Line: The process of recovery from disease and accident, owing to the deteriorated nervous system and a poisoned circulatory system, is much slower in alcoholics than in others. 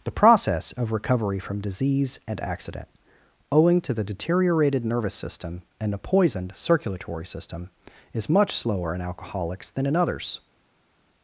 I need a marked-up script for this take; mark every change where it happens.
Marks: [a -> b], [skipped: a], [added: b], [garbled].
The process of recovery from disease and accident, owing to the deteriorated nervous system and a poisoned circulatory system, is much slower in alcoholics than in others.